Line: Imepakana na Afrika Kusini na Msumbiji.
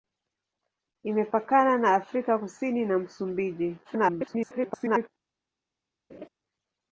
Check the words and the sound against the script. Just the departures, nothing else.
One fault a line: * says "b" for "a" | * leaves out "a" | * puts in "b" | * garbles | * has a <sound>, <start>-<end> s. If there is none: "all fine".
* garbles
* has a laugh, 6.1-6.3 s